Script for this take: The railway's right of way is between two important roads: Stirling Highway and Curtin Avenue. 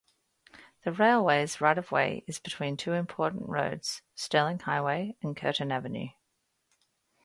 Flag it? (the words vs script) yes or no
no